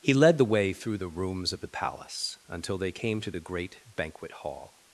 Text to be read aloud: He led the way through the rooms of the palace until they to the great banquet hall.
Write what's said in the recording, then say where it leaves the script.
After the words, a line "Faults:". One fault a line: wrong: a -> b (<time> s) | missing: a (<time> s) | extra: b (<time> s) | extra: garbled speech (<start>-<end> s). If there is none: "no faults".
He led the way through the rooms of the palace until they came to the great banquet hall.
Faults:
extra: came (2.9 s)